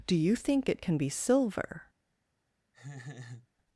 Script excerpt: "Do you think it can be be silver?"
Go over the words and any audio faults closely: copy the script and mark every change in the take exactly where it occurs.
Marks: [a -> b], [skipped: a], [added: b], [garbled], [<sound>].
"Do you think it can be [skipped: be] silver?" [laugh]